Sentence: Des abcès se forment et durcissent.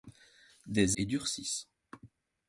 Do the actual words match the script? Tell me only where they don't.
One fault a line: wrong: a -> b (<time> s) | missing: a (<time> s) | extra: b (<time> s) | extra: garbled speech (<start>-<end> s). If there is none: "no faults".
missing: abcès se forment (1.0 s)